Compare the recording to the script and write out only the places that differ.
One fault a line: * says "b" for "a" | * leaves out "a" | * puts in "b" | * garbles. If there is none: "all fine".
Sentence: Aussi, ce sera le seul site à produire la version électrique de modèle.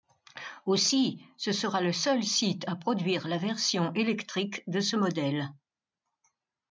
* puts in "ce"